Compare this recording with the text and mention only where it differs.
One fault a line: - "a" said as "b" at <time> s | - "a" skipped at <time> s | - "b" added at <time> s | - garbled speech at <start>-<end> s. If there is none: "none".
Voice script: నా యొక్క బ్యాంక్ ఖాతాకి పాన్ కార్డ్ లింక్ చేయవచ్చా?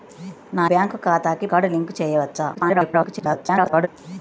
- "యొక్క" skipped at 0.7 s
- "పాన్" skipped at 1.5 s
- garbled speech at 2.5-3.9 s